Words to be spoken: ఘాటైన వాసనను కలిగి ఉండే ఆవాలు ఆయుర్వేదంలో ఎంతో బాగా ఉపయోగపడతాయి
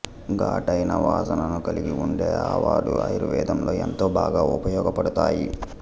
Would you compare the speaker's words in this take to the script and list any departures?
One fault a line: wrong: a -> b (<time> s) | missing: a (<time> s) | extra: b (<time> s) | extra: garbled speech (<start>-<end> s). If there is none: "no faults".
no faults